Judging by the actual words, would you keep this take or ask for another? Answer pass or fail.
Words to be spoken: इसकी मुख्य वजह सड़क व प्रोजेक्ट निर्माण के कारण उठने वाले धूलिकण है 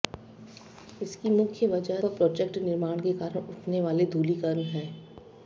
fail